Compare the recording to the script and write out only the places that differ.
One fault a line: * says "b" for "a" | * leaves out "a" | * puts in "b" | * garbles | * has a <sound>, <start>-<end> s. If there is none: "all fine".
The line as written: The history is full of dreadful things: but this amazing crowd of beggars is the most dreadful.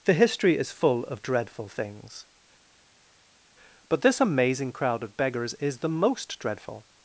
all fine